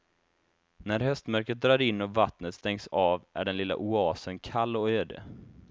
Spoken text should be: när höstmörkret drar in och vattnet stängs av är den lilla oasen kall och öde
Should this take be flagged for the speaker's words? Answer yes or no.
no